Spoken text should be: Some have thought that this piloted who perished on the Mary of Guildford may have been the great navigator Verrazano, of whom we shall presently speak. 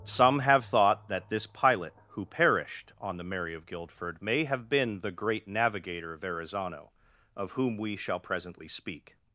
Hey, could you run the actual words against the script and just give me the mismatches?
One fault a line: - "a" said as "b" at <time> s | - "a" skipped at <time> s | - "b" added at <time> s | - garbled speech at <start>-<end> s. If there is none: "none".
- "piloted" said as "pilot" at 1.4 s